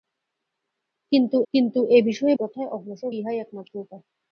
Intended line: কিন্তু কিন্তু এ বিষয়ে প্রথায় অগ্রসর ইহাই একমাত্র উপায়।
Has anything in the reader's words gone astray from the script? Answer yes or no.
no